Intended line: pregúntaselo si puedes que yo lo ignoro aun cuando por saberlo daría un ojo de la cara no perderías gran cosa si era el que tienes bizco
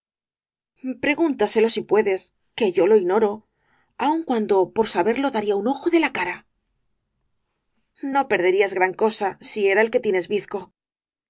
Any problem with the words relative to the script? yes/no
no